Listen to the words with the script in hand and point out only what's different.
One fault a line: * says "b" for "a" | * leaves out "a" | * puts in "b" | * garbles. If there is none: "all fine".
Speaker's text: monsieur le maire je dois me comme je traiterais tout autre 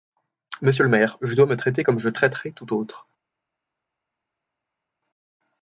* puts in "traiter"